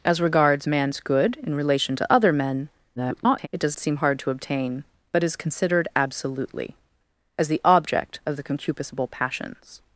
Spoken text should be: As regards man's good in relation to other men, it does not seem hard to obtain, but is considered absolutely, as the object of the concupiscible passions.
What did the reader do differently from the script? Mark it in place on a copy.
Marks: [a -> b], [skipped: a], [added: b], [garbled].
As regards man's good in relation to other men, [garbled] it does [skipped: not] seem hard to obtain, but is considered absolutely, as the object of the concupiscible passions.